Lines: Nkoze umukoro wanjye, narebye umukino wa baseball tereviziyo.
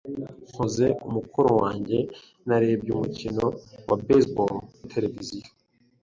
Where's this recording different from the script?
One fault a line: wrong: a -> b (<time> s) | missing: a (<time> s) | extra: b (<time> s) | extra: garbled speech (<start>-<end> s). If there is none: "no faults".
no faults